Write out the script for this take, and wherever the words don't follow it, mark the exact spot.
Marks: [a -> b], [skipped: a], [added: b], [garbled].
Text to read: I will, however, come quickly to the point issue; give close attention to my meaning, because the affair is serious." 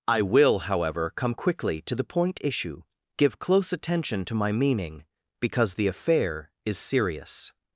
I will, however, come quickly to the point issue; give close attention to my meaning, because the affair is serious."